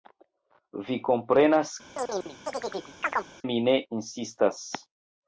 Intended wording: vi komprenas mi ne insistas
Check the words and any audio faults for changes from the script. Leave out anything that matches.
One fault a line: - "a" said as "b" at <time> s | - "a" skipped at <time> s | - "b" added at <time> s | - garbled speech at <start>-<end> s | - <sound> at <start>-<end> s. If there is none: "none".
- chirp at 1.9-3.3 s